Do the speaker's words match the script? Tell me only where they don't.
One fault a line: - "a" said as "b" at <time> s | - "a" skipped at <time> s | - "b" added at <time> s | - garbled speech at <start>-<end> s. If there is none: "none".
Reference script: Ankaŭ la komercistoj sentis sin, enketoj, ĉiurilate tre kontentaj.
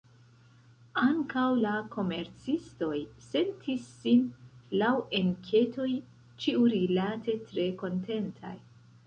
- "laŭ" added at 4.8 s